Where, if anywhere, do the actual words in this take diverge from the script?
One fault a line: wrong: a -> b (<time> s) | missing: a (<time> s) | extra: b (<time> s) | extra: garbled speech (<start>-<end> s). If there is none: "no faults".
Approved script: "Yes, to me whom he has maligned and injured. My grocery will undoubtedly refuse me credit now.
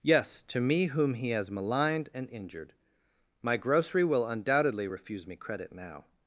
no faults